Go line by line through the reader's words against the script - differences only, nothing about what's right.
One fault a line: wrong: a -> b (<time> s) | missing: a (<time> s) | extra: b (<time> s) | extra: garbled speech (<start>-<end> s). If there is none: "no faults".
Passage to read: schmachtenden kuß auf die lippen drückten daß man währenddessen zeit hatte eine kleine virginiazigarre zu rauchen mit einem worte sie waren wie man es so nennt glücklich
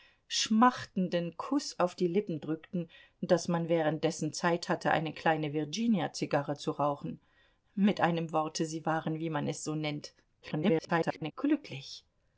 extra: garbled speech (10.4-11.3 s)